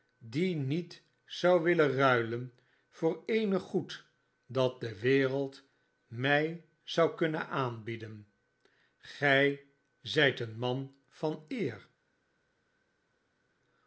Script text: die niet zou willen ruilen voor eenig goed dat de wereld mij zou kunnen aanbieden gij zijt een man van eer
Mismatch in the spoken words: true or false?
false